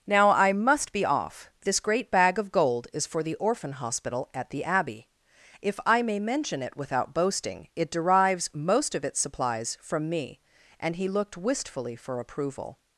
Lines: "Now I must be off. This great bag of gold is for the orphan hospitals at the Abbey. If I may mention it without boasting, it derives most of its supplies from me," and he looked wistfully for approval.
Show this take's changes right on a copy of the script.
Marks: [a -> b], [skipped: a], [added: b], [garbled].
"Now I must be off. This great bag of gold is for the orphan [hospitals -> hospital] at the Abbey. If I may mention it without boasting, it derives most of its supplies from me," and he looked wistfully for approval.